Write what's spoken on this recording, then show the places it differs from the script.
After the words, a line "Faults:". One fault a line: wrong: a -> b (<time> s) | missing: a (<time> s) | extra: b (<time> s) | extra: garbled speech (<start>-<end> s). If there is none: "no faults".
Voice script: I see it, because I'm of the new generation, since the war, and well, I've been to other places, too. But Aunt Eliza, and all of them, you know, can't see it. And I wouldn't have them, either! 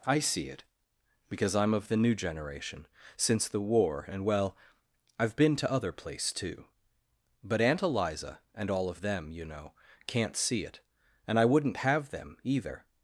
I see it, because I'm of the new generation, since the war, and well, I've been to other place, too. But Aunt Eliza, and all of them, you know, can't see it. And I wouldn't have them, either!
Faults:
wrong: places -> place (5.9 s)